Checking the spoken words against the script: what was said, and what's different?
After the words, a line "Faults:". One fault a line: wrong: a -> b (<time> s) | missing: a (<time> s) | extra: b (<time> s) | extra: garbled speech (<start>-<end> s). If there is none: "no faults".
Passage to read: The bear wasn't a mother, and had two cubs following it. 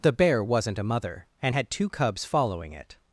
The bear wasn't a mother, and had two cubs following it.
Faults:
no faults